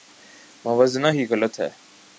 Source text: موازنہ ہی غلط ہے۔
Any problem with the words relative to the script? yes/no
no